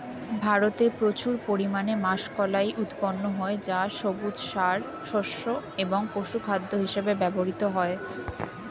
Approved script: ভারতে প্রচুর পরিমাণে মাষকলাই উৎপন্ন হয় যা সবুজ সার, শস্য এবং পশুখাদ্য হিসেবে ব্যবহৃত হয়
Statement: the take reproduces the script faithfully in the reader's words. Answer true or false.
true